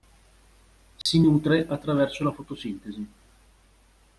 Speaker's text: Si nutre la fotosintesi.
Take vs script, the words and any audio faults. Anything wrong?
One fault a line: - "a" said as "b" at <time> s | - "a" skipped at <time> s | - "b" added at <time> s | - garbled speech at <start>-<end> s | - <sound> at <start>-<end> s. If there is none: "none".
- dropout at 1.0-1.1 s
- "attraverso" added at 1.7 s